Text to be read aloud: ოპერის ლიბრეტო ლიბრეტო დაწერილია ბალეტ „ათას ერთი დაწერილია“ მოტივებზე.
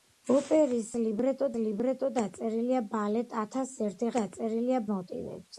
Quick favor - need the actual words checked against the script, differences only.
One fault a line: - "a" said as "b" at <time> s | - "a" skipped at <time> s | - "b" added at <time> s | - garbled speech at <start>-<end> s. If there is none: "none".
none